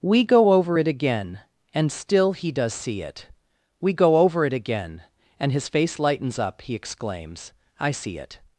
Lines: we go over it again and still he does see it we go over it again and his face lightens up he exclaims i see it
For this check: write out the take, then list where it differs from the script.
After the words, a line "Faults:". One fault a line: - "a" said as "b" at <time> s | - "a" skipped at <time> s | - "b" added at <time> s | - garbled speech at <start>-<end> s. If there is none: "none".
we go over it again and still he does see it we go over it again and his face lightens up he exclaims i see it
Faults:
none